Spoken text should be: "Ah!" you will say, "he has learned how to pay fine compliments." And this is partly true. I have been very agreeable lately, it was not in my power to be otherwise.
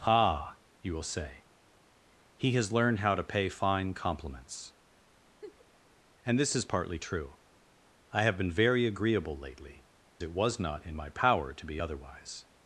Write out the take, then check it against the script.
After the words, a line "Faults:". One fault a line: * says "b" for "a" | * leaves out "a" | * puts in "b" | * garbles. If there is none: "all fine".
"Ah!" you will say, "he has learned how to pay fine compliments." And this is partly true. I have been very agreeable lately, it was not in my power to be otherwise.
Faults:
all fine